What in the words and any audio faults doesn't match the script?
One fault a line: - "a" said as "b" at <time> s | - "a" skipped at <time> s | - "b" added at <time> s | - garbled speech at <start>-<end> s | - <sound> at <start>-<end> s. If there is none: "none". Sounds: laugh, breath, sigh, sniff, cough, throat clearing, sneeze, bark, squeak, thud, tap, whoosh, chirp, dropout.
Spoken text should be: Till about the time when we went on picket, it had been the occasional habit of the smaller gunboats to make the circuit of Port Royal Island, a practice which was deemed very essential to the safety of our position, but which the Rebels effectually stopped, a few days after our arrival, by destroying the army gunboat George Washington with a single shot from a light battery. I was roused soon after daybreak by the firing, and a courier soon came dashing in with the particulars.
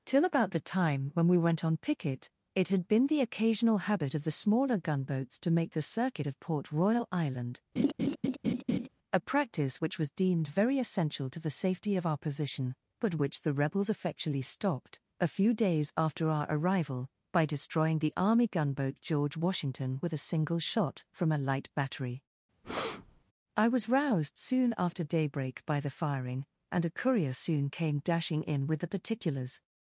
- laugh at 7.8-8.9 s
- breath at 22.6-23.2 s